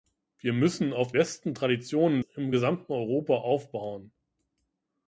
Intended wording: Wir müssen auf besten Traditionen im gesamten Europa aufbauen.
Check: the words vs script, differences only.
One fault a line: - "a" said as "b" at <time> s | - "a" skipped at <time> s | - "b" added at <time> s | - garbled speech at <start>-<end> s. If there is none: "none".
none